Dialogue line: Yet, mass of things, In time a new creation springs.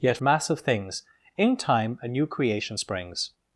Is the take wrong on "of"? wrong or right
right